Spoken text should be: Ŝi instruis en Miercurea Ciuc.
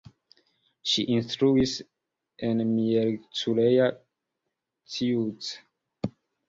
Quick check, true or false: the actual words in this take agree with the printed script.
true